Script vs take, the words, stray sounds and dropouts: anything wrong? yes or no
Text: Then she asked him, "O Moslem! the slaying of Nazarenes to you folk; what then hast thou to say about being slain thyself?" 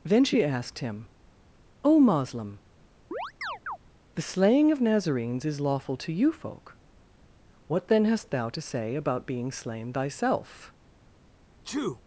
yes